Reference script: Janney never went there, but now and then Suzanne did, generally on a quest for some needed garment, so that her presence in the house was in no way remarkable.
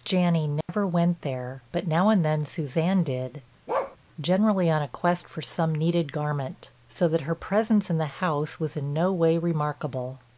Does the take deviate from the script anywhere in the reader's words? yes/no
no